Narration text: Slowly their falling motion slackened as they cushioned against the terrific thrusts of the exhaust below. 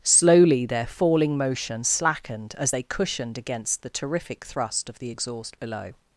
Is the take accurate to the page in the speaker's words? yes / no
no